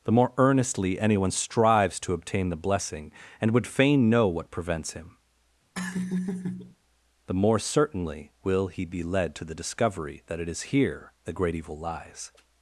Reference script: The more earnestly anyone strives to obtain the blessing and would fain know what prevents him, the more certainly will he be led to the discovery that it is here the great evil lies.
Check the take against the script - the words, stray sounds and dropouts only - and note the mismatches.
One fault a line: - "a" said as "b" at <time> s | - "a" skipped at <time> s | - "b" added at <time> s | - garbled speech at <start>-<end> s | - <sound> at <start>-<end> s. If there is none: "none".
- laugh at 5.7-6.8 s